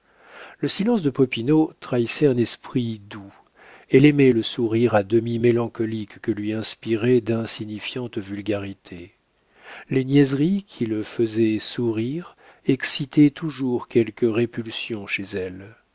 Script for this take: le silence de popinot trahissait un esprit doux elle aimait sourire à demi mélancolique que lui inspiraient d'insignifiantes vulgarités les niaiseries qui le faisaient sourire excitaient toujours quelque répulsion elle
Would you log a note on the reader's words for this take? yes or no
yes